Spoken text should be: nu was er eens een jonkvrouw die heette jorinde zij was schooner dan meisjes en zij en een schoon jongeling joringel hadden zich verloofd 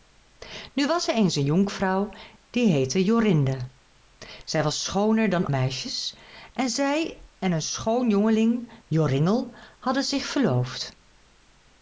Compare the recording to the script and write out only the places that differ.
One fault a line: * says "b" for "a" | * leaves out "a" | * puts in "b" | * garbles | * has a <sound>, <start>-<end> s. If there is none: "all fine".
all fine